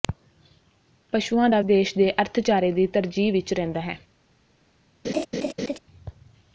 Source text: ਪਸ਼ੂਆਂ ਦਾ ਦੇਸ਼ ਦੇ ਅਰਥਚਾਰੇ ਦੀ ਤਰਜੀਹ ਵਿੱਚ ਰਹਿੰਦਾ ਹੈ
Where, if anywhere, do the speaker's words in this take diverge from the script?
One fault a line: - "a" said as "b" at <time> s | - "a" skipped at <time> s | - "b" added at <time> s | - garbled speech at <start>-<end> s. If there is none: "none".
none